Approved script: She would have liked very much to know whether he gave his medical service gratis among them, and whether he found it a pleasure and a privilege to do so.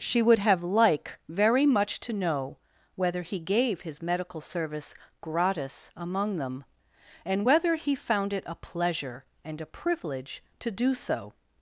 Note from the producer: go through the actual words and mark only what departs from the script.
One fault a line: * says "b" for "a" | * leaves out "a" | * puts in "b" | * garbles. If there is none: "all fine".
* says "like" for "liked"